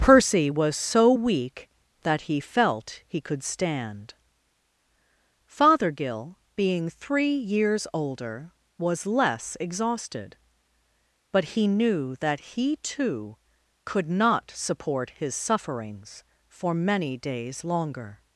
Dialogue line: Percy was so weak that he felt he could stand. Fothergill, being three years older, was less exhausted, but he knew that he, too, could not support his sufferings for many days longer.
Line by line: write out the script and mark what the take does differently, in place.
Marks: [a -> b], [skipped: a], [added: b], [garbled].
Percy was so weak that he felt he could stand. Fothergill, being three years older, was less exhausted, but he knew that he, too, could not support his sufferings for many days longer.